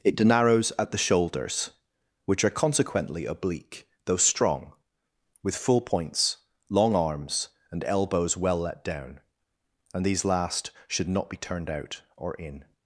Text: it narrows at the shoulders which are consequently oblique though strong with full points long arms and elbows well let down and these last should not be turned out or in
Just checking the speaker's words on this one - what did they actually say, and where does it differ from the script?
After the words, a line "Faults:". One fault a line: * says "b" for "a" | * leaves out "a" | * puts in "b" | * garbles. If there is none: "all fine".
it narrows at the shoulders which are consequently oblique though strong with full points long arms and elbows well let down and these last should not be turned out or in
Faults:
all fine